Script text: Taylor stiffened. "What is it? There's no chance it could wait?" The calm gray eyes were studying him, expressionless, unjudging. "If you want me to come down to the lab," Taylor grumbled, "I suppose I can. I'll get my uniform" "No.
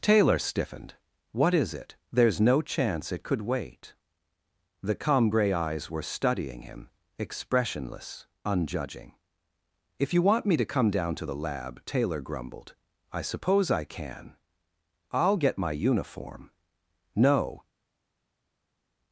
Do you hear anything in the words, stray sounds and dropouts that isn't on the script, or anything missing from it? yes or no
no